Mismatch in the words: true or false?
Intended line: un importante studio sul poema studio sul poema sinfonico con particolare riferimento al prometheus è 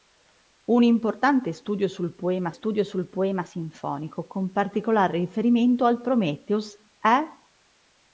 false